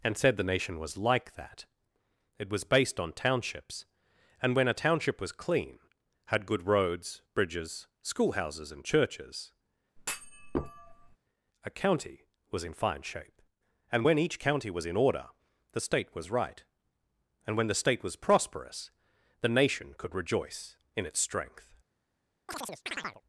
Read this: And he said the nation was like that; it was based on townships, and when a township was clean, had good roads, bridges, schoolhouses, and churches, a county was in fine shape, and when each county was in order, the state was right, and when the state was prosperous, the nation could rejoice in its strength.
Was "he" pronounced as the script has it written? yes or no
no